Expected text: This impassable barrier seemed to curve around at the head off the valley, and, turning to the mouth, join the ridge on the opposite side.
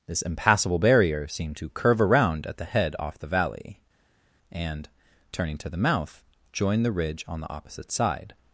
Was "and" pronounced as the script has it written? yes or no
yes